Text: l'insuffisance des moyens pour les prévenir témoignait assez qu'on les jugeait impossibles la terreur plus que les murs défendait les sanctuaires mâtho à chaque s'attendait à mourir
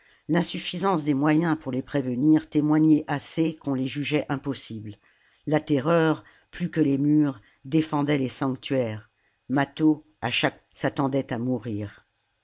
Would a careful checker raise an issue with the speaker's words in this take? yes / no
no